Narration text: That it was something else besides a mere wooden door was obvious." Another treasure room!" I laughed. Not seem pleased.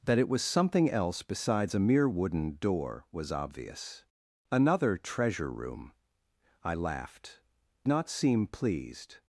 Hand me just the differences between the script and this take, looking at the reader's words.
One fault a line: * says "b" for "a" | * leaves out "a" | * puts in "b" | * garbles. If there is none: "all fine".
all fine